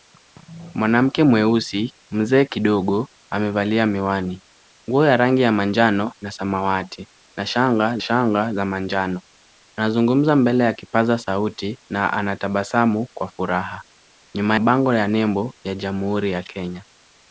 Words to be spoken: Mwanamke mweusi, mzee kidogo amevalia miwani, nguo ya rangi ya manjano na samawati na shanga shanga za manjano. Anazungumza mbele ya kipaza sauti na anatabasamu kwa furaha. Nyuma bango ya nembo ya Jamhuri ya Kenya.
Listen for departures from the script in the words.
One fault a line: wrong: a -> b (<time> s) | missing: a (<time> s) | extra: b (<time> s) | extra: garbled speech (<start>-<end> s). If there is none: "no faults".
no faults